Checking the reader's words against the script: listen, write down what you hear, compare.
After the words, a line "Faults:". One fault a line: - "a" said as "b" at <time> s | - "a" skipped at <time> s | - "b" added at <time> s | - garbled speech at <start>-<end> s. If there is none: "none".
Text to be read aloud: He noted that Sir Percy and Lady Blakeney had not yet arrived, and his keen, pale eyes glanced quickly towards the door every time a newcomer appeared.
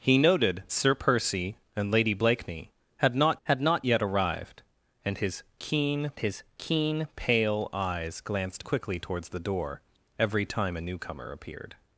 He noted Sir Percy and Lady Blakeney had not had not yet arrived, and his keen his keen, pale eyes glanced quickly towards the door every time a newcomer appeared.
Faults:
- "that" skipped at 0.6 s
- "had not" added at 3.4 s
- "his keen" added at 6.2 s